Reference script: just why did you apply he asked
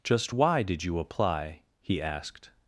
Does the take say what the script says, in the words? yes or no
yes